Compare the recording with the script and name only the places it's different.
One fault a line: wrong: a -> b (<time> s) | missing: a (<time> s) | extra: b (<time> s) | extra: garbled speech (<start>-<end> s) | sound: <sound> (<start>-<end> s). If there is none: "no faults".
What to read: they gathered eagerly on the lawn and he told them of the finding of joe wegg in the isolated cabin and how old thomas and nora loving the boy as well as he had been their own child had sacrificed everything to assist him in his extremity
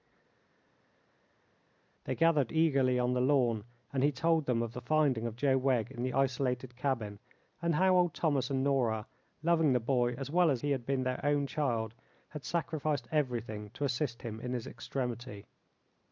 no faults